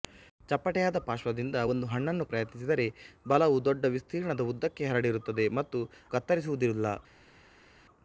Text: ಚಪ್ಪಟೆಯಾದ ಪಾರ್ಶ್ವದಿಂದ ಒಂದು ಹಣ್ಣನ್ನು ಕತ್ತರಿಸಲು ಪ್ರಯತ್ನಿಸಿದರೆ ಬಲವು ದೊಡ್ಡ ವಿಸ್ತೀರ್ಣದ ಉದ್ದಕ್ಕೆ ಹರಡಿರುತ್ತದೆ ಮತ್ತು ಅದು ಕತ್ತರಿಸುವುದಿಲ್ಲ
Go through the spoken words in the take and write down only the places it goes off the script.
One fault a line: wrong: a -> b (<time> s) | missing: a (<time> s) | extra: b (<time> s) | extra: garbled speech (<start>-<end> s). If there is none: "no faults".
missing: ಕತ್ತರಿಸಲು (2.2 s)
missing: ಅದು (5.8 s)